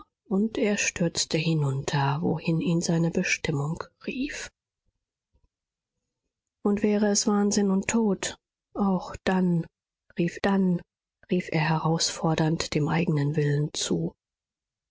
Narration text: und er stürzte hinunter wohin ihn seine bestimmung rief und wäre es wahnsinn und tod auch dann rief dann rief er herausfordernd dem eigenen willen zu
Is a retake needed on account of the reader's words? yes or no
no